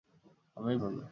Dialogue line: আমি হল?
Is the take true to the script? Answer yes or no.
yes